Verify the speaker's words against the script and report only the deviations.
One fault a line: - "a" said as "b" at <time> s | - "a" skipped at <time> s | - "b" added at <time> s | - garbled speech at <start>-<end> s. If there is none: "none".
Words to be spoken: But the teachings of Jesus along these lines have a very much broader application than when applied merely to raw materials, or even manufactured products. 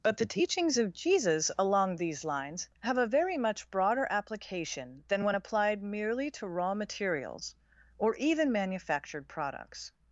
none